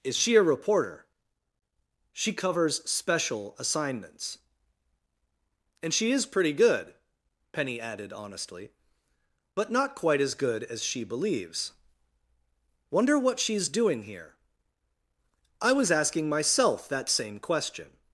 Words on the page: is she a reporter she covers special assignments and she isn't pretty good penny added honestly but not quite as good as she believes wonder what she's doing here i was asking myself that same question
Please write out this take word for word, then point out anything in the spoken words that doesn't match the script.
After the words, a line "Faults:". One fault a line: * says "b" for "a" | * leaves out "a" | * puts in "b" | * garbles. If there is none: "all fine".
is she a reporter she covers special assignments and she is pretty good penny added honestly but not quite as good as she believes wonder what she's doing here i was asking myself that same question
Faults:
* says "is" for "isn't"